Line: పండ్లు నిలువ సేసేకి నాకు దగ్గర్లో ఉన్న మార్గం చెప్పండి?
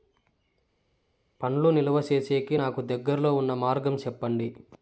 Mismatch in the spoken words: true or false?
false